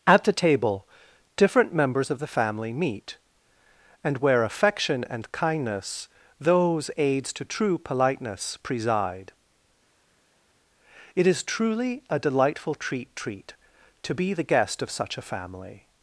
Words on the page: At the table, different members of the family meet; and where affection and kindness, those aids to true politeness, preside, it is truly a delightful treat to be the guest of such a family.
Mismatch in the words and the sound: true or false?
true